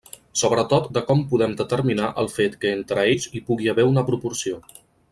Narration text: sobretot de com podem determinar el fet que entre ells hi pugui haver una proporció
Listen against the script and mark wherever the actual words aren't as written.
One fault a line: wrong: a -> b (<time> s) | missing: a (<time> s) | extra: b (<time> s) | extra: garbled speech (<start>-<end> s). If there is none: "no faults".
no faults